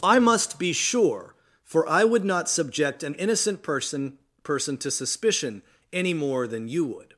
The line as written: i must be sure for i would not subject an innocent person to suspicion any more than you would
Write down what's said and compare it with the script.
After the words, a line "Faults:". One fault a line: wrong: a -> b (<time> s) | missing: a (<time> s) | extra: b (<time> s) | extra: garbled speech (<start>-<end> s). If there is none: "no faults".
i must be sure for i would not subject an innocent person person to suspicion any more than you would
Faults:
extra: person (4.4 s)